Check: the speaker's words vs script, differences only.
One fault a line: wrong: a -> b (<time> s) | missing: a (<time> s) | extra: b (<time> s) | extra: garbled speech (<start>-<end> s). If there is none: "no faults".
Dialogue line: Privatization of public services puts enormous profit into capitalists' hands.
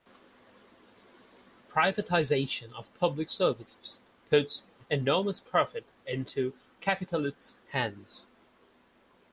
no faults